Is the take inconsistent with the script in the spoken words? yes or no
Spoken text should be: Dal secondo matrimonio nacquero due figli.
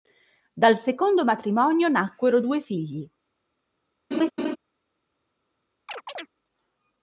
no